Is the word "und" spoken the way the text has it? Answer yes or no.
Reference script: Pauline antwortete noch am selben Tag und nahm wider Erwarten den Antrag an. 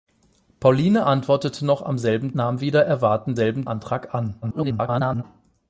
no